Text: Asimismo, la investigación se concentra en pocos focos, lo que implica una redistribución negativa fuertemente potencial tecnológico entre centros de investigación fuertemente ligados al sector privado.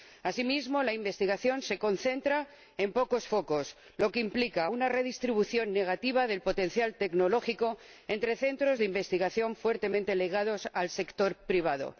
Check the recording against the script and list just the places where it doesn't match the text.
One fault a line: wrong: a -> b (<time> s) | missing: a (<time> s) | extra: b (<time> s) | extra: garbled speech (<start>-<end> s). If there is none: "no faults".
wrong: fuertemente -> del (6.3 s)